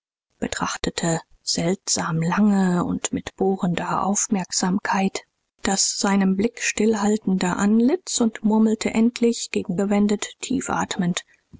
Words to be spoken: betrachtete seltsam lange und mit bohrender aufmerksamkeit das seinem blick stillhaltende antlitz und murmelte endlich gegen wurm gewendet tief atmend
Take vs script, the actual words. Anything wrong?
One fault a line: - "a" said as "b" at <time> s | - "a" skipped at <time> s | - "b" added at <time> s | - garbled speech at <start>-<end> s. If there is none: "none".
- "wurm" skipped at 9.8 s